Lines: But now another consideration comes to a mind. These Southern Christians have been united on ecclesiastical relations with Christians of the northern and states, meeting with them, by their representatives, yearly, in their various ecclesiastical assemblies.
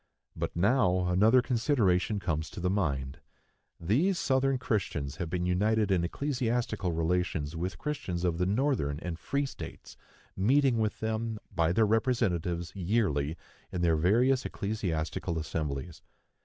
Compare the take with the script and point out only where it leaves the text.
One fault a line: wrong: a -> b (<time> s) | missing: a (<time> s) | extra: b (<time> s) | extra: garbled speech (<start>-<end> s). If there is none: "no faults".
wrong: a -> the (2.6 s)
wrong: on -> in (5.9 s)
extra: free (9.2 s)